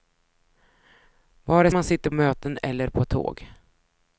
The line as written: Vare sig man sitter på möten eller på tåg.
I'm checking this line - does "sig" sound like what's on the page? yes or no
no